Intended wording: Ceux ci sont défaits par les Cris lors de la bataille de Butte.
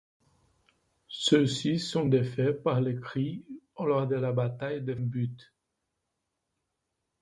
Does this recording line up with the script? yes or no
yes